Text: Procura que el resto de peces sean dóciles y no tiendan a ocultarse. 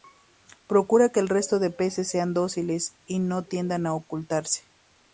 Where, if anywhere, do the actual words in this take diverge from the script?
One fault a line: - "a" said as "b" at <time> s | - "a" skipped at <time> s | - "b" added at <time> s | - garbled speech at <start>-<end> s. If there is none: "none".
none